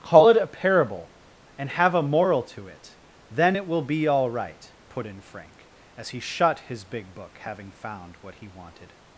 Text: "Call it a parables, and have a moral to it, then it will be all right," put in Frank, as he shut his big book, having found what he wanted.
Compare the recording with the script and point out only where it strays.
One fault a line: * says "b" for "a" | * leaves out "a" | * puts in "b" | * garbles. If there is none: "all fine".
* says "parable" for "parables"